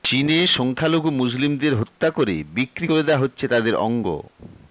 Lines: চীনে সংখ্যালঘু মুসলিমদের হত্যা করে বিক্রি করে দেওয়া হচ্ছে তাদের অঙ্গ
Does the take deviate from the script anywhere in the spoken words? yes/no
no